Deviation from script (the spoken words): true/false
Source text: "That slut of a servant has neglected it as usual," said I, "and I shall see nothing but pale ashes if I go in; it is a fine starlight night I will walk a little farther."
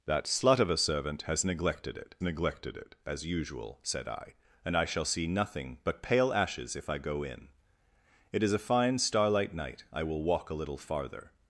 true